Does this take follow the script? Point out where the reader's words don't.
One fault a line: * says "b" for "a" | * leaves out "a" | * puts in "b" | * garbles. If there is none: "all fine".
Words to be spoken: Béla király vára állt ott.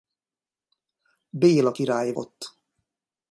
* leaves out "vára állt"